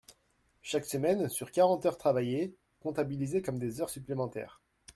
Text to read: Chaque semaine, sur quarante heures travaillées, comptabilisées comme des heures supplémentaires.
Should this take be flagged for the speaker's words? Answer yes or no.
no